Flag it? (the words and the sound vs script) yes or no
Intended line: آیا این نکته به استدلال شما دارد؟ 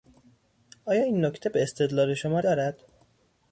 no